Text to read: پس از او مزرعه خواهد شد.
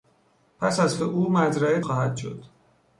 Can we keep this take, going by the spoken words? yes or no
yes